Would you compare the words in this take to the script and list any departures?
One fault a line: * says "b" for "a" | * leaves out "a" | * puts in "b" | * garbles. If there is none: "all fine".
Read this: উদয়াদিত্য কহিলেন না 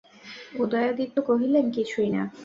* puts in "কিছুই"